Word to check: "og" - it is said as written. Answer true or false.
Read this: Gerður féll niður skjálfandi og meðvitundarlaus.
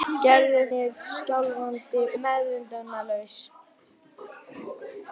false